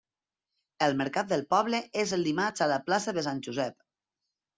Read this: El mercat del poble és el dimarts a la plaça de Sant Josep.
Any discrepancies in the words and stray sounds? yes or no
no